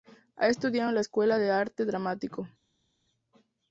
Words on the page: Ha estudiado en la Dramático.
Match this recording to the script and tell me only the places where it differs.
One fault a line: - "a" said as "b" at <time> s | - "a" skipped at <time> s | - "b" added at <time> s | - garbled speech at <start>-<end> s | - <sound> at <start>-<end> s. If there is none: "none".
- "Escuela de Arte" added at 1.0 s